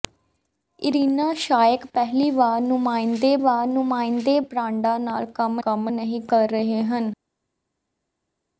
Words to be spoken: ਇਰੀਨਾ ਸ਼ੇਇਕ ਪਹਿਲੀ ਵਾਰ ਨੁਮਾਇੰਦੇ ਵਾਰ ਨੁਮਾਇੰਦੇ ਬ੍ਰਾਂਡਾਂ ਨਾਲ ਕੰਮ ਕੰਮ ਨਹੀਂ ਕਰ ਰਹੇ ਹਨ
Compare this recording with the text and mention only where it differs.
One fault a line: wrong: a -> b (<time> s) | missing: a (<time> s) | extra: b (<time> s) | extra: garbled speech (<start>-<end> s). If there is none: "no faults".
no faults